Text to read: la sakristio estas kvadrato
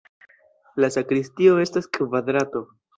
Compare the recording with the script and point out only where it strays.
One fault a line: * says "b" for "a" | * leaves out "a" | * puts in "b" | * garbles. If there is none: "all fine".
all fine